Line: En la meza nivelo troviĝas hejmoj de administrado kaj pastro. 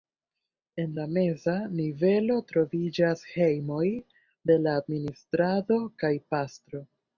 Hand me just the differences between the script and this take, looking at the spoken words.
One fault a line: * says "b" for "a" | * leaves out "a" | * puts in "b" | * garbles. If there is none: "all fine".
* puts in "la"